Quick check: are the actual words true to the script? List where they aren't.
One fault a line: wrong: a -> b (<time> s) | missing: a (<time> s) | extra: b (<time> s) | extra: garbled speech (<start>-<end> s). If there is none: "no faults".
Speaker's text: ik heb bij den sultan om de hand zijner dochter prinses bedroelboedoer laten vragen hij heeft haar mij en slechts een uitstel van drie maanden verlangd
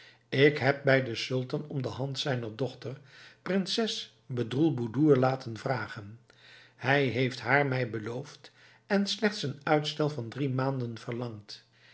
extra: beloofd (7.9 s)